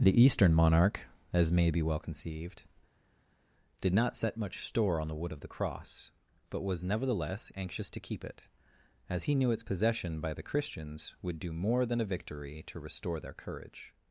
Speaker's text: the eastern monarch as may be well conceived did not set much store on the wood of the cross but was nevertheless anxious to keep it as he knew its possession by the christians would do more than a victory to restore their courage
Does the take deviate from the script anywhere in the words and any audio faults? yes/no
no